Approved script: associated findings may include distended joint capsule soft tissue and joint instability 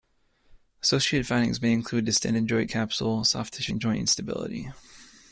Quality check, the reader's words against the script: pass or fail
pass